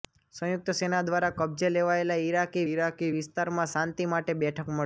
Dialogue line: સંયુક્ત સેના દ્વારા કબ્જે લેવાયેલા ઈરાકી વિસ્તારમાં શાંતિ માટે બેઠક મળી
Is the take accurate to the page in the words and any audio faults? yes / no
no